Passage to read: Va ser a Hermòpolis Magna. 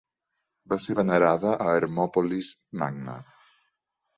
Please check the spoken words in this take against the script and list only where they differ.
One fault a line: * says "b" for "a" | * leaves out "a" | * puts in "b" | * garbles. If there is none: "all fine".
* puts in "venerada"